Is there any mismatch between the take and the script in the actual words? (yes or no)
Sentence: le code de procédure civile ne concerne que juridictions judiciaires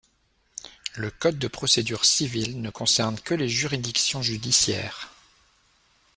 yes